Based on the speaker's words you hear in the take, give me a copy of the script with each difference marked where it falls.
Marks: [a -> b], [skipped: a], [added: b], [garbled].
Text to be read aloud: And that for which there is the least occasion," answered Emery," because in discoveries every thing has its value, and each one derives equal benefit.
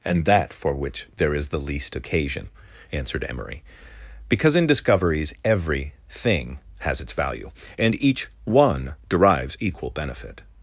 And that for which there is the least occasion," answered Emery," because in discoveries every thing has its value, and each one derives equal benefit.